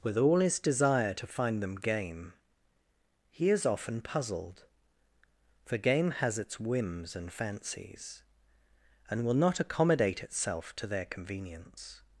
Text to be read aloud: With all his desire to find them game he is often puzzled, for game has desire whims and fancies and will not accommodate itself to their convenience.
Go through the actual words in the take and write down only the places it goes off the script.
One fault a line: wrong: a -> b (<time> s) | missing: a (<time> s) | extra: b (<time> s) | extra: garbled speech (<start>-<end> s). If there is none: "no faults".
wrong: desire -> its (6.4 s)